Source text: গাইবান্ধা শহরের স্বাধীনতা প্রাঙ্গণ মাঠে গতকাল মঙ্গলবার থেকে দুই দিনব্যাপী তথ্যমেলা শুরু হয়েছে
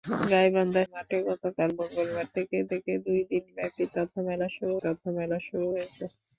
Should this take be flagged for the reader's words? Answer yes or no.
yes